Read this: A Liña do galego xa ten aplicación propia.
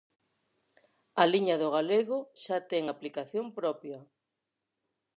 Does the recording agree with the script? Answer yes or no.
yes